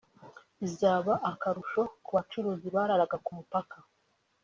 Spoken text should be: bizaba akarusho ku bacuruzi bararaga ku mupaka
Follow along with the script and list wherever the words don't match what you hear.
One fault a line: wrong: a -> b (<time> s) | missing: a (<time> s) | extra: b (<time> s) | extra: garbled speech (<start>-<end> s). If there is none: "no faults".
no faults